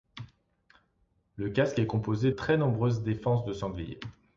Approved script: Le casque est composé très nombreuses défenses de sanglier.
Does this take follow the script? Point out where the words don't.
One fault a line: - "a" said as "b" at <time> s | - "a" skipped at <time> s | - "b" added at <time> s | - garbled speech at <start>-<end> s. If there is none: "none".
none